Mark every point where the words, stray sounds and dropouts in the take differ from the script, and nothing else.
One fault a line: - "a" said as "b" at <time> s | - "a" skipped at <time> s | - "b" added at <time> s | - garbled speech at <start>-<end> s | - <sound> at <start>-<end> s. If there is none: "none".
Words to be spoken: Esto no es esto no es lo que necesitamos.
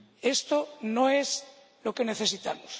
- "esto no es" skipped at 1.4 s